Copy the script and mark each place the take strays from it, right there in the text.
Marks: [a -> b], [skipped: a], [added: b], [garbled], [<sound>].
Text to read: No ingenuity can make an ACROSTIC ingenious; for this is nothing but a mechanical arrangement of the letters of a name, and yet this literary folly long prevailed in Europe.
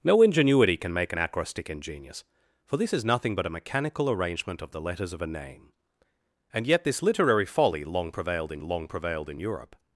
No ingenuity can make an ACROSTIC ingenious; for this is nothing but a mechanical arrangement of the letters of a name, and yet this literary folly long prevailed in [added: long prevailed in] Europe.